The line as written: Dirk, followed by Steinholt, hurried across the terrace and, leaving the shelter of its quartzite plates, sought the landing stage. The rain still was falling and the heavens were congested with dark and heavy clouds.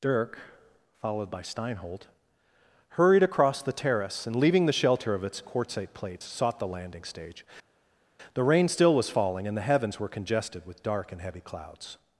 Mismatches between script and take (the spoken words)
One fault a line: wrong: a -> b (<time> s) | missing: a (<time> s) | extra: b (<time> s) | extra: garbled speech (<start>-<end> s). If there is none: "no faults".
no faults